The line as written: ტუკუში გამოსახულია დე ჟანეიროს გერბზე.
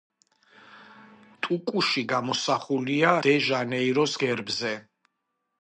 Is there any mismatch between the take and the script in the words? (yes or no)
no